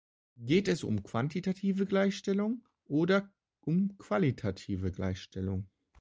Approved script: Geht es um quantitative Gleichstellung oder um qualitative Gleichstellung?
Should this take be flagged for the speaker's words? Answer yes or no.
no